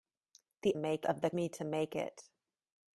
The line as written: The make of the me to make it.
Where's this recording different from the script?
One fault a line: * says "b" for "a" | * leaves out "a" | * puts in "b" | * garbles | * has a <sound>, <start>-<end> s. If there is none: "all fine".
all fine